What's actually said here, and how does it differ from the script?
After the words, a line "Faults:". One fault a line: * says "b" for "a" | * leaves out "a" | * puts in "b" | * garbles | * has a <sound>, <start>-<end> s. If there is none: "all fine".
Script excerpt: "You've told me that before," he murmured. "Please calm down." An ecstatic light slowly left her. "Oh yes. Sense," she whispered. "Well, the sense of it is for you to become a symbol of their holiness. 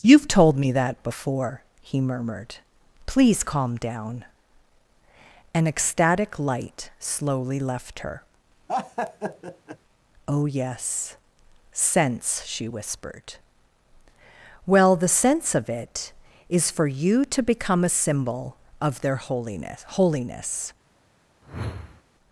"You've told me that before," he murmured. "Please calm down." An ecstatic light slowly left her. "Oh yes. Sense," she whispered. "Well, the sense of it is for you to become a symbol of their holiness holiness.
Faults:
* has a laugh, 8.7-9.8 s
* puts in "holiness"
* has a whoosh, 21.4-22.0 s